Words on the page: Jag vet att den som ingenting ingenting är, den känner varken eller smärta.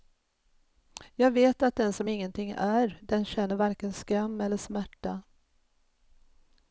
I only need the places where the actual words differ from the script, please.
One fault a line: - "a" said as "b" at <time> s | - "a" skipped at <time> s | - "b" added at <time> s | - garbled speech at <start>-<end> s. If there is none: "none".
- "ingenting" skipped at 2.5 s
- "skam" added at 3.9 s